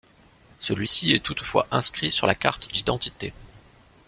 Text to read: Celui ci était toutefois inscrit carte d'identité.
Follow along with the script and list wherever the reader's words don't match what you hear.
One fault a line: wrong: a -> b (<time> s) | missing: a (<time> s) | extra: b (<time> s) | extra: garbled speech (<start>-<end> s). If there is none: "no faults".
wrong: était -> est (1.1 s)
extra: sur la (2.1 s)